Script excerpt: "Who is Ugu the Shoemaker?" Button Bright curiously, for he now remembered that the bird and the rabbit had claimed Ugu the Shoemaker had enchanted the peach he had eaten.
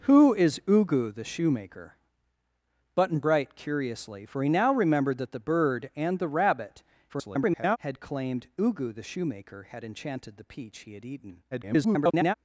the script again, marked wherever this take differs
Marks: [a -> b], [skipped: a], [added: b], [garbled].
"Who is Ugu the Shoemaker?" Button Bright curiously, for he now remembered that the bird and the rabbit [garbled] had claimed Ugu the Shoemaker had enchanted the peach he had eaten. [garbled]